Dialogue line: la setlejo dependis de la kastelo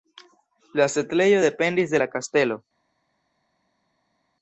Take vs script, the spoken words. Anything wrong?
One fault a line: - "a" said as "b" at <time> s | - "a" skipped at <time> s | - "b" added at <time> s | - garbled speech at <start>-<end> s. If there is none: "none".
none